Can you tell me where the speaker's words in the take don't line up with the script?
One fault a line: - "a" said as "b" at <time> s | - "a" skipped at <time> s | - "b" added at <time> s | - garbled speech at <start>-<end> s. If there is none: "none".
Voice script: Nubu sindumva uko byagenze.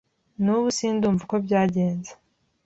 none